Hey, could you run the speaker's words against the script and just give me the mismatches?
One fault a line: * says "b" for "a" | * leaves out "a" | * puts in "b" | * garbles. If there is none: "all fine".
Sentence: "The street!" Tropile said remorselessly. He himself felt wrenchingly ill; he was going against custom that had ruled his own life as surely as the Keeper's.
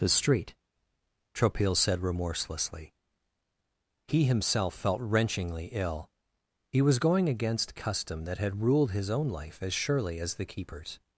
all fine